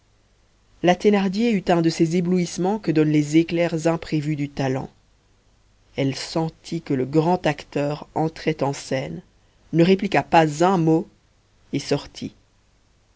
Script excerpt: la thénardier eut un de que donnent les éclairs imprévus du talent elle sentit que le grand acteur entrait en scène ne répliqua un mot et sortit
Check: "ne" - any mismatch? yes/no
no